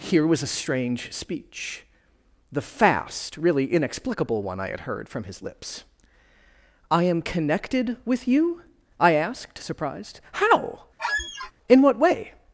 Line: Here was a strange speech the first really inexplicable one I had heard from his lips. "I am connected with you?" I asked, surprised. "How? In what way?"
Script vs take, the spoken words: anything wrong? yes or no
yes